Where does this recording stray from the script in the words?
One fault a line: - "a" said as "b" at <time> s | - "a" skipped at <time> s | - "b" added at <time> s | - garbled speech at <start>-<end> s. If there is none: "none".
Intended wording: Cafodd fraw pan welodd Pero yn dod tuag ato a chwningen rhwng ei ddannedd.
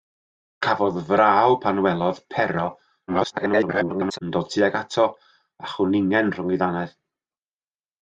- garbled speech at 3.1-4.2 s